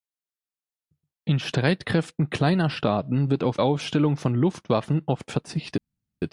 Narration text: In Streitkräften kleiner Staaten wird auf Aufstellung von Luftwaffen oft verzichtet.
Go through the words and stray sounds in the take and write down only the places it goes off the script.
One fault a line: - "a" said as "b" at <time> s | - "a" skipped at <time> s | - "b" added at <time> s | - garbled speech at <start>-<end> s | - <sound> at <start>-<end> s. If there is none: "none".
none